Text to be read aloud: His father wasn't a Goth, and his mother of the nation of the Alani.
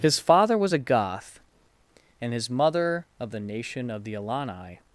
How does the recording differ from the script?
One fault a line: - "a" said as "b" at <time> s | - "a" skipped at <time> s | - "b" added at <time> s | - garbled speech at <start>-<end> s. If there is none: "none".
- "wasn't" said as "was" at 0.6 s